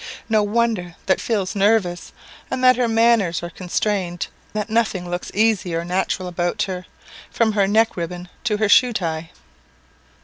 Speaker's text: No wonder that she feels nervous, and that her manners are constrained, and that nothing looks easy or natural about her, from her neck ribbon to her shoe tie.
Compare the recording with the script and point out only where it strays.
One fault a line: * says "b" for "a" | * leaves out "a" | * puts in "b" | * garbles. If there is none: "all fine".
* leaves out "she"
* leaves out "and"